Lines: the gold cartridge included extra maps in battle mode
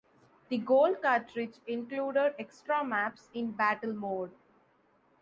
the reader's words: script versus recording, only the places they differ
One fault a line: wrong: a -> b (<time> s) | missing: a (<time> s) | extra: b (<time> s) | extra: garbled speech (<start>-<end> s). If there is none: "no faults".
no faults